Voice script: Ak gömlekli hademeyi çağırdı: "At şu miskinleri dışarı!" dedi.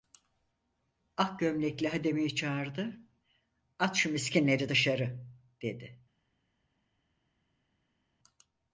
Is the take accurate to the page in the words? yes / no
yes